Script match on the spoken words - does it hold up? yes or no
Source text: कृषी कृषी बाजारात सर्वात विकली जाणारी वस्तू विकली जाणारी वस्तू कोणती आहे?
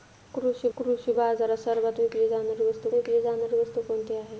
yes